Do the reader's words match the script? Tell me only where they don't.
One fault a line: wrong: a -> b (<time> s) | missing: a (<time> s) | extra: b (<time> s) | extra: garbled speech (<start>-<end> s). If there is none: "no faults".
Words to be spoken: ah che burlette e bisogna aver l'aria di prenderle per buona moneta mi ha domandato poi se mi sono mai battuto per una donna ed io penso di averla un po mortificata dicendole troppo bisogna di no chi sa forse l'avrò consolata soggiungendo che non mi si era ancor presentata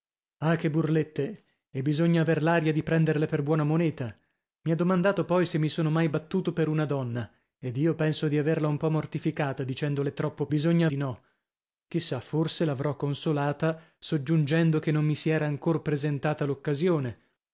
no faults